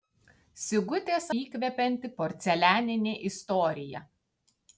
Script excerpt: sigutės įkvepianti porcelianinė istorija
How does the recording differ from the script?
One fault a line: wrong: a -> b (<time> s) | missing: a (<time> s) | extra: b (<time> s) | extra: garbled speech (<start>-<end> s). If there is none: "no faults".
no faults